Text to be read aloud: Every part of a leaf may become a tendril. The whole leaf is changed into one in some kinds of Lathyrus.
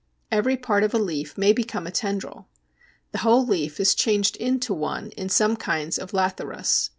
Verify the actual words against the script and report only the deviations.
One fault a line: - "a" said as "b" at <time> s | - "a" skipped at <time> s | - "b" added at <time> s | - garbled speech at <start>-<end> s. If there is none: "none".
none